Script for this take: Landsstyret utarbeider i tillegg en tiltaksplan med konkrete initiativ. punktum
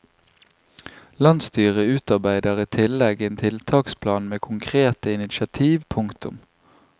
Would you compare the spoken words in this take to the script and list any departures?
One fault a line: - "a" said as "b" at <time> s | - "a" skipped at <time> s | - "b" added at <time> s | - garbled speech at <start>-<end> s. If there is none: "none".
none